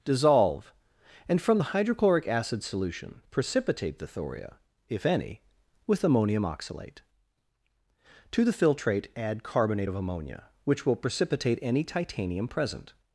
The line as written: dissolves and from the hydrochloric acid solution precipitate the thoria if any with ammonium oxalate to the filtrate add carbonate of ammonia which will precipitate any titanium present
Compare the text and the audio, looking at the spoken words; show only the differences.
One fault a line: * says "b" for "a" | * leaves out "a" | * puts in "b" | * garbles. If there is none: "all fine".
* says "dissolve" for "dissolves"